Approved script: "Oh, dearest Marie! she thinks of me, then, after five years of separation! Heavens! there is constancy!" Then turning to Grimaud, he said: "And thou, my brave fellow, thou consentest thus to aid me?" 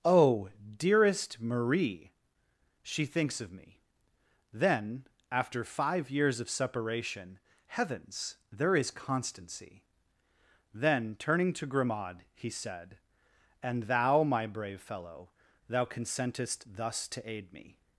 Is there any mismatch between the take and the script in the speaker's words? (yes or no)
no